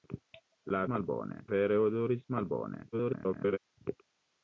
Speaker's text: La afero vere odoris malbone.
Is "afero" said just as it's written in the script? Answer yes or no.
no